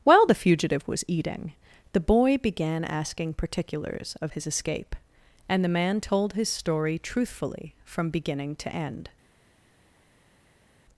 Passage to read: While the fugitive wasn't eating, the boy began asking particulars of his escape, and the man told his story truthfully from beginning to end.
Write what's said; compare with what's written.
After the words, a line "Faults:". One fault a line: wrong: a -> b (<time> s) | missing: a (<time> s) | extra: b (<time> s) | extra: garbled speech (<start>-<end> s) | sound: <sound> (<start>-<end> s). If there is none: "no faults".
While the fugitive was eating, the boy began asking particulars of his escape, and the man told his story truthfully from beginning to end.
Faults:
wrong: wasn't -> was (0.9 s)